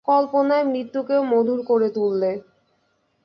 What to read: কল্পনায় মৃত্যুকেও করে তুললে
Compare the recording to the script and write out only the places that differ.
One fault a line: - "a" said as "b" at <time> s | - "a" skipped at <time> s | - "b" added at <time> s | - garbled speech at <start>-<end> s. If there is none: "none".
- "মধুর" added at 1.2 s